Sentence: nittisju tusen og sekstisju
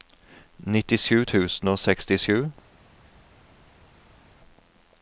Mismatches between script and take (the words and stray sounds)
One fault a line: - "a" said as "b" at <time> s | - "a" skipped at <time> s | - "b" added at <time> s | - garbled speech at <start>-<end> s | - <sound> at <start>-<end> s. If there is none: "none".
none